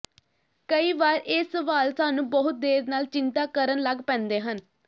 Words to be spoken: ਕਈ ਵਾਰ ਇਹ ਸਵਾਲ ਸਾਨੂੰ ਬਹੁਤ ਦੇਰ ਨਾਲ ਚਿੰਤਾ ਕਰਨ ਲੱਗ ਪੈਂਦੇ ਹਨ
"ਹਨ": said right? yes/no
yes